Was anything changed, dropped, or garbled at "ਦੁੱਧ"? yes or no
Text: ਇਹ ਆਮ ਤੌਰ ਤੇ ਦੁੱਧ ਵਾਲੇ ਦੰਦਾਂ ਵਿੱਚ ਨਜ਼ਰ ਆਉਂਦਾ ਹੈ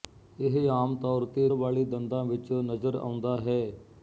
yes